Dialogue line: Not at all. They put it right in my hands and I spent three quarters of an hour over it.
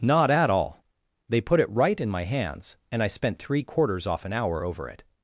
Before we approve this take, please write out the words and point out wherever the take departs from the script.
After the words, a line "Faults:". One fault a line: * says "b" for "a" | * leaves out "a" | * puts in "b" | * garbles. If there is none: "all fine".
Not at all. They put it right in my hands and I spent three quarters off an hour over it.
Faults:
* says "off" for "of"